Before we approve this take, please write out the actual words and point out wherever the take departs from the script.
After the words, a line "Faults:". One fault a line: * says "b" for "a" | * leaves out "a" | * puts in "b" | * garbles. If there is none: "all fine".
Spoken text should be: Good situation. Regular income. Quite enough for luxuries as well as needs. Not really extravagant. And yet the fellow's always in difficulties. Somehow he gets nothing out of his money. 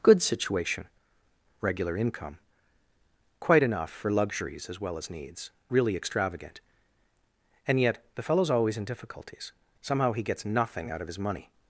Good situation. Regular income. Quite enough for luxuries as well as needs. Really extravagant. And yet the fellow's always in difficulties. Somehow he gets nothing out of his money.
Faults:
* leaves out "Not"